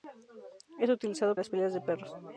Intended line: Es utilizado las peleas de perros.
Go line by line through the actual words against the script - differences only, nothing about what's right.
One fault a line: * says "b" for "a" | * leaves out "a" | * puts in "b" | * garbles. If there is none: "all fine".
all fine